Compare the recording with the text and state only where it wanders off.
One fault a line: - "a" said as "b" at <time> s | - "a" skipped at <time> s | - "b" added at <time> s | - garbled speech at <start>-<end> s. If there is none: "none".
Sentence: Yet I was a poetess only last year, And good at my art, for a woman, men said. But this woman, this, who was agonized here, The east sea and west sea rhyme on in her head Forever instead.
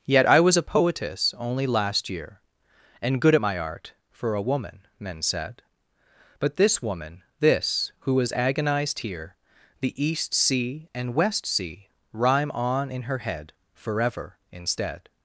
none